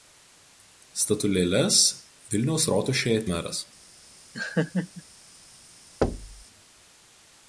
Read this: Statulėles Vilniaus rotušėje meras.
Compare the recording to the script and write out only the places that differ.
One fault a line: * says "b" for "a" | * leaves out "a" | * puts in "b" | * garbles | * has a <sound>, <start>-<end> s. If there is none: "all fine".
* has a laugh, 4.3-5.0 s
* has a thud, 6.0-6.5 s